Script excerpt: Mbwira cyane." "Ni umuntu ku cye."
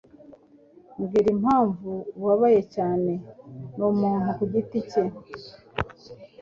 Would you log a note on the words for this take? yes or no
yes